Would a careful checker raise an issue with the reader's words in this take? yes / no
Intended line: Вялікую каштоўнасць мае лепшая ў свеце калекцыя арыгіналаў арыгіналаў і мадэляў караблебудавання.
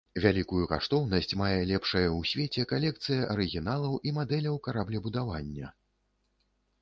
yes